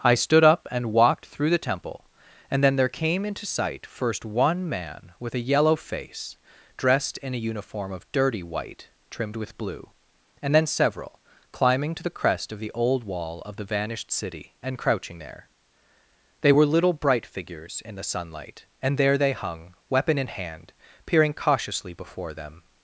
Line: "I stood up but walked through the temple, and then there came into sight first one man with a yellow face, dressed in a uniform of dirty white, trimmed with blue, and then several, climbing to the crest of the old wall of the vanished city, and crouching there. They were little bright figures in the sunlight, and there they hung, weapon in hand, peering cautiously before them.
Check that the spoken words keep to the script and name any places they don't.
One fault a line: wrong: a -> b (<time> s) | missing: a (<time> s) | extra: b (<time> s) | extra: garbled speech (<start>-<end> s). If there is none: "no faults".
wrong: but -> and (0.7 s)